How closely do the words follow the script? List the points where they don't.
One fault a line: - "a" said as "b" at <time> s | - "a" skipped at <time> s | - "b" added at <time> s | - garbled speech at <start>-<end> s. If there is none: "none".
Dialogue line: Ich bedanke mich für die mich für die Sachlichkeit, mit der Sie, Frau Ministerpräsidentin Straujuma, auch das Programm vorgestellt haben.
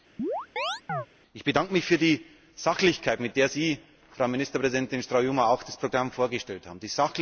- "mich für die" skipped at 2.2 s